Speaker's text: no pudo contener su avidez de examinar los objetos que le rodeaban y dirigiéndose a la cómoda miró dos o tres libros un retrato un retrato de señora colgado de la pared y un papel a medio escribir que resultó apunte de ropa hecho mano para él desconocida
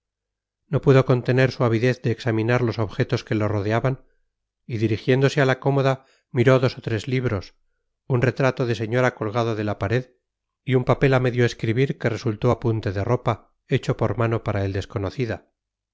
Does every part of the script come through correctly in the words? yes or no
no